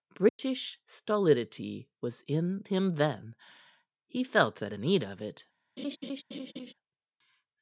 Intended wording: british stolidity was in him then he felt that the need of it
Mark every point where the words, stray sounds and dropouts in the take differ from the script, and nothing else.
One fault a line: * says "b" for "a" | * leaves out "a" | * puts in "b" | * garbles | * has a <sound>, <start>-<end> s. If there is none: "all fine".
* has a dropout, 0.3-0.4 s
* has a laugh, 5.8-6.7 s